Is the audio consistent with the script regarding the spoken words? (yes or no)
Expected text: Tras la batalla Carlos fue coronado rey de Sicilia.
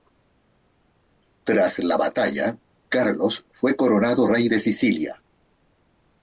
yes